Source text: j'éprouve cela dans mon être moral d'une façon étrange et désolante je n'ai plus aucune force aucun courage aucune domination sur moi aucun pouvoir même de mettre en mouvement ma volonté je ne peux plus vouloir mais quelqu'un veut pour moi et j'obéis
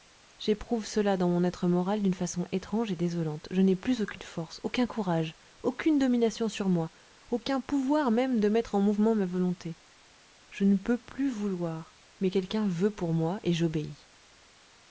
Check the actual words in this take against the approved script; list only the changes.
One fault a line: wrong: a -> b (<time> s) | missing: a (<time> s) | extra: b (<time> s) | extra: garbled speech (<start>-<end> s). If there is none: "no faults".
no faults